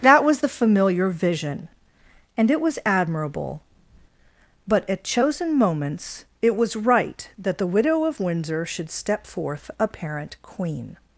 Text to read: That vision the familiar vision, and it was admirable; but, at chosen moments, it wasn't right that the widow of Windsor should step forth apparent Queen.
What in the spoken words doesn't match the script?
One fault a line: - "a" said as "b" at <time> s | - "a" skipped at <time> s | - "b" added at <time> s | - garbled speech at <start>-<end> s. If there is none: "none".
- "vision" said as "was" at 0.2 s
- "wasn't" said as "was" at 6.5 s